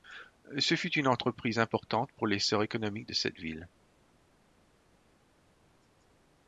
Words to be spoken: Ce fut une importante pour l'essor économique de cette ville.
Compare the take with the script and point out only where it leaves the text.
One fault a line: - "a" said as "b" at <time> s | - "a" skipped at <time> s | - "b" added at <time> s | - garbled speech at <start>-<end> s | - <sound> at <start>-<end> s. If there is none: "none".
- "entreprise" added at 1.1 s